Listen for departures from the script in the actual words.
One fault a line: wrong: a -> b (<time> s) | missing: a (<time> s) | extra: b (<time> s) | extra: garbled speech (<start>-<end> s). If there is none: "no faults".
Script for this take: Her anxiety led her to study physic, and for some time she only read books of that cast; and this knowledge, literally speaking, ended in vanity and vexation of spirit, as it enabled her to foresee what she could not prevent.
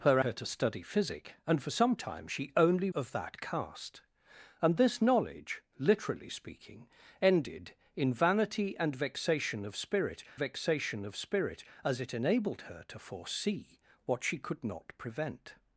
missing: anxiety led (0.2 s)
missing: read books (2.9 s)
extra: vexation of spirit (10.4 s)